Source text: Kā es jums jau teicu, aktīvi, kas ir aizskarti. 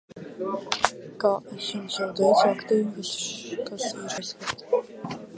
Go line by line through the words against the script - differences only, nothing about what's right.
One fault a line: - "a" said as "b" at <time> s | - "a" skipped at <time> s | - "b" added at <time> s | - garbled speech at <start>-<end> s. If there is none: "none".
none